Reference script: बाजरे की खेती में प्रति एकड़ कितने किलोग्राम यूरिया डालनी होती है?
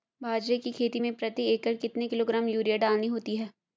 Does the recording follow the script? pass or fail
pass